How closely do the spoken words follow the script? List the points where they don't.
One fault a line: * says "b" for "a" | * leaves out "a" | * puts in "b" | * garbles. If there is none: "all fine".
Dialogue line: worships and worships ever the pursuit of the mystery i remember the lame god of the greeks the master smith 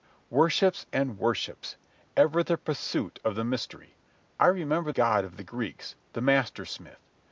* leaves out "the lame"